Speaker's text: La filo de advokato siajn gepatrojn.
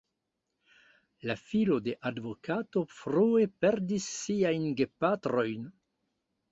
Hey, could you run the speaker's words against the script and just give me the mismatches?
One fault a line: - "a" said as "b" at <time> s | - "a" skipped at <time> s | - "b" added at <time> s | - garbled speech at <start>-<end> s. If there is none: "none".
- "frue perdis" added at 3.0 s